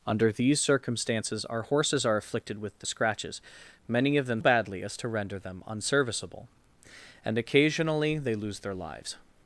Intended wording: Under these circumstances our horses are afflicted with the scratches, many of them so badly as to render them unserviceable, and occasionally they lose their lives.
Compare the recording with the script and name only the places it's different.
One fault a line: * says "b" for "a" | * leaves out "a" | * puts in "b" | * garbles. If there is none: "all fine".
* leaves out "so"